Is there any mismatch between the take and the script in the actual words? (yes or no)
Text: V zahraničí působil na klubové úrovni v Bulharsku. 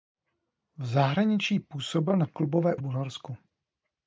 yes